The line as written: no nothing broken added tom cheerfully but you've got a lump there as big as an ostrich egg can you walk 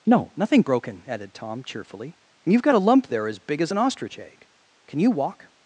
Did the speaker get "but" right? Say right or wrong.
wrong